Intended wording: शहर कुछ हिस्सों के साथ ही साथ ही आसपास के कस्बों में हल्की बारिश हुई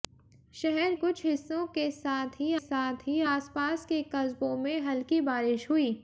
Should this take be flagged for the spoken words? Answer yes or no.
no